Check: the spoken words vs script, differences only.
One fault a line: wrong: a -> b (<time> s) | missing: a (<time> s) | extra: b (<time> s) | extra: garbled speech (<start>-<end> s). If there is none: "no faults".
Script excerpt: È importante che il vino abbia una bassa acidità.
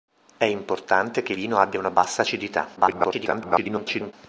missing: il (1.3 s)
extra: garbled speech (2.8-4.1 s)